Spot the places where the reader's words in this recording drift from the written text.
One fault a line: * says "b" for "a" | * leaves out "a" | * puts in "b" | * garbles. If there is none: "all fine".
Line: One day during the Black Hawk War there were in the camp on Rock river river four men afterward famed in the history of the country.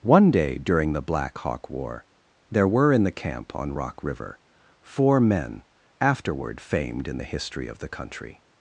* leaves out "river"